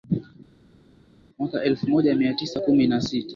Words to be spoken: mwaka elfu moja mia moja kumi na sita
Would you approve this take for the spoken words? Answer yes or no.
no